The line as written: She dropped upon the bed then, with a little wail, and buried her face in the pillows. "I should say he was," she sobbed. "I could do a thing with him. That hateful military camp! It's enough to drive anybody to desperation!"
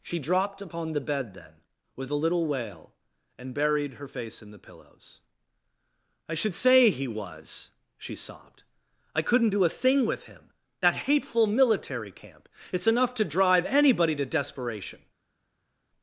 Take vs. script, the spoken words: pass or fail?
fail